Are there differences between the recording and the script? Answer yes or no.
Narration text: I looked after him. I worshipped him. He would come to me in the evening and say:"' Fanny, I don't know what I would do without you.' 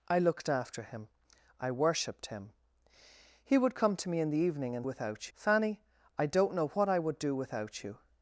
yes